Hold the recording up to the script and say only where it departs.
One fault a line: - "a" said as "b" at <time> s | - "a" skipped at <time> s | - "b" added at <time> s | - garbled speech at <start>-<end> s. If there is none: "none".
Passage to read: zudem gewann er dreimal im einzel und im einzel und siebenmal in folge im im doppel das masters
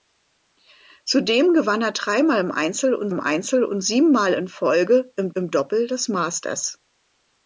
none